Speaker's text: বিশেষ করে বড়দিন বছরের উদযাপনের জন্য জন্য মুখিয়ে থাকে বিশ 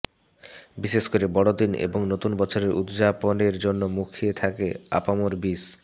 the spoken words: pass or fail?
fail